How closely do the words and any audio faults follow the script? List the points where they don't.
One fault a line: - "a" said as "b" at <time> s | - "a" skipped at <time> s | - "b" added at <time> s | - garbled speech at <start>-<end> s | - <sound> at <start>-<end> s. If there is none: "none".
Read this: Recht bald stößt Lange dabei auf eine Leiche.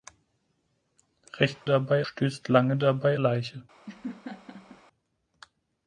- "bald" said as "dabei" at 1.6 s
- "auf eine" skipped at 3.2 s
- laugh at 3.9-4.8 s